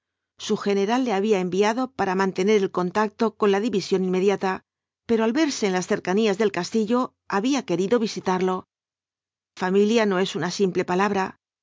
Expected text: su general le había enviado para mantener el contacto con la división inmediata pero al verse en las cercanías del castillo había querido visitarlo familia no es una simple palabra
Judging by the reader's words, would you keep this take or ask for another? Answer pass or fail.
pass